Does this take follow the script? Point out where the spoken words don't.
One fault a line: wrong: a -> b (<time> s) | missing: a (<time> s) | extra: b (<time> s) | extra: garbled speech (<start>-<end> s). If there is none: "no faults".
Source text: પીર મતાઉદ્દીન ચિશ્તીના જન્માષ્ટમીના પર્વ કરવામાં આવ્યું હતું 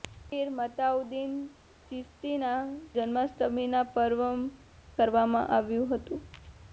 no faults